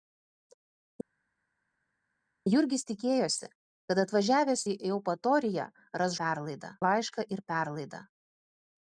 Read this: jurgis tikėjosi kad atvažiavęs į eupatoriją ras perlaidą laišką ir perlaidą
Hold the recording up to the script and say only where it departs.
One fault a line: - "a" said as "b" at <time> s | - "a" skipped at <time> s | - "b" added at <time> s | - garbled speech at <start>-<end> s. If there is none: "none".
none